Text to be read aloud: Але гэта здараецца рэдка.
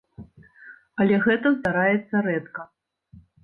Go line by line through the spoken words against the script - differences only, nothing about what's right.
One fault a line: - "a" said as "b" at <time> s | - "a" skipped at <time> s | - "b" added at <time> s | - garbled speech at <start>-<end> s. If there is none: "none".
none